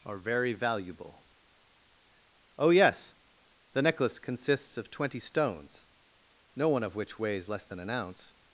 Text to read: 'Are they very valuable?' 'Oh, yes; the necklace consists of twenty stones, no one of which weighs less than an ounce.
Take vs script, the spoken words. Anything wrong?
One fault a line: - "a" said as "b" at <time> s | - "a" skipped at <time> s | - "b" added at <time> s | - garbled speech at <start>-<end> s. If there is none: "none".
- "they" skipped at 0.2 s